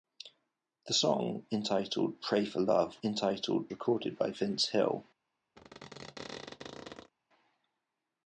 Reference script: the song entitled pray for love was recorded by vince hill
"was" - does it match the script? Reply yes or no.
no